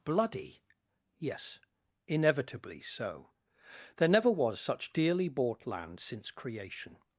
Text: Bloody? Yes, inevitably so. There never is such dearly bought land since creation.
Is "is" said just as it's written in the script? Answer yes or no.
no